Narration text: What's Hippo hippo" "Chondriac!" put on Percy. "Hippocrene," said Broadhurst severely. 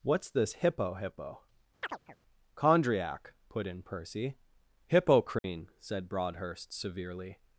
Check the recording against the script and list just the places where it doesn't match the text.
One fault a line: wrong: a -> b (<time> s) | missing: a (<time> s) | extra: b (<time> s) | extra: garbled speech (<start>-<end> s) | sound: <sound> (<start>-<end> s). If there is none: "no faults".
extra: this (0.3 s)
sound: chirp (1.8-2.2 s)
wrong: on -> in (3.7 s)
sound: dropout (5.4-5.4 s)